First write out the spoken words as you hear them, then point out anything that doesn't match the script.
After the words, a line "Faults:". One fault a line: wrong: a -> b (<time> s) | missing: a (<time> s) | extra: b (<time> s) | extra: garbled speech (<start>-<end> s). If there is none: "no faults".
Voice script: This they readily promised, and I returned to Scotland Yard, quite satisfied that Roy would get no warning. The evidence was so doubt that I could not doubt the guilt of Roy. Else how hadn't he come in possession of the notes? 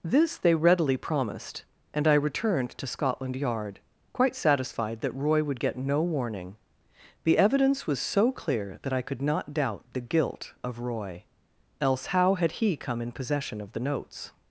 This they readily promised, and I returned to Scotland Yard, quite satisfied that Roy would get no warning. The evidence was so clear that I could not doubt the guilt of Roy. Else how had he come in possession of the notes?
Faults:
wrong: doubt -> clear (8.3 s)
wrong: hadn't -> had (12.3 s)